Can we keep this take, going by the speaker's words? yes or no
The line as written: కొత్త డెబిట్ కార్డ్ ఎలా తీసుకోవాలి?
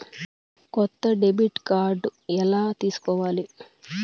yes